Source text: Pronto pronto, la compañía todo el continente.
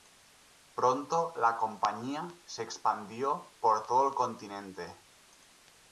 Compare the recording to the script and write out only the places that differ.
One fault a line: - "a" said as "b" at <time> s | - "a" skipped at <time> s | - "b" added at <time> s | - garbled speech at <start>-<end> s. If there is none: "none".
- "pronto" skipped at 1.3 s
- "se expandió por" added at 2.5 s